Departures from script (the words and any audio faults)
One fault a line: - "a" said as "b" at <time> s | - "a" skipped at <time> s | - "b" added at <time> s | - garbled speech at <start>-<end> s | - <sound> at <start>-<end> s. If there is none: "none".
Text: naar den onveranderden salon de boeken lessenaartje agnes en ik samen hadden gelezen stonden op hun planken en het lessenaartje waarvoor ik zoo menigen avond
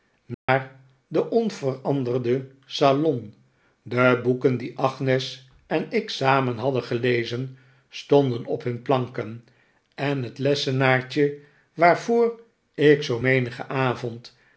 - dropout at 0.3-0.5 s
- "lessenaartje" said as "die" at 4.6 s